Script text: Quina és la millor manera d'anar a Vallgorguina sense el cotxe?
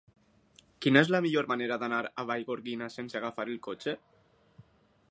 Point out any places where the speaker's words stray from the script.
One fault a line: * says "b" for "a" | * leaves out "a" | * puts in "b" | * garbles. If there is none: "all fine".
* puts in "agafar"